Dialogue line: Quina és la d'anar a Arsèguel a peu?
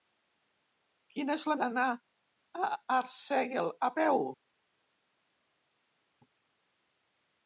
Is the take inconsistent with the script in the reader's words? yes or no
no